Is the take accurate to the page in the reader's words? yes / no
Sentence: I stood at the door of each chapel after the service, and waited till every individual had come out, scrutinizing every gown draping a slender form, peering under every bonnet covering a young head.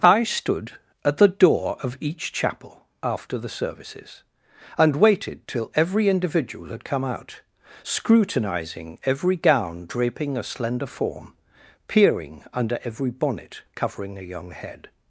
no